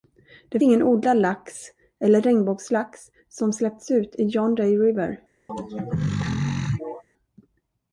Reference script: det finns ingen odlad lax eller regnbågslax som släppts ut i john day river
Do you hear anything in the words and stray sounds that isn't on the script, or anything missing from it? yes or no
yes